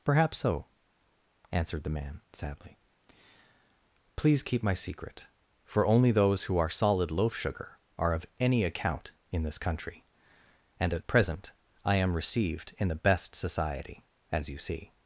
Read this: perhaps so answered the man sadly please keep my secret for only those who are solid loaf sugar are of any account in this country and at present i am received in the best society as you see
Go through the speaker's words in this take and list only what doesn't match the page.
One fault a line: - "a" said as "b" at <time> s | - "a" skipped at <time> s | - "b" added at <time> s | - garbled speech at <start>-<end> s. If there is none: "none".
none